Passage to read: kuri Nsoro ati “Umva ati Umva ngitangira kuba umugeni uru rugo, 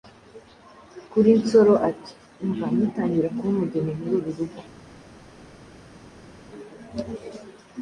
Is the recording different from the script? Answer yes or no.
yes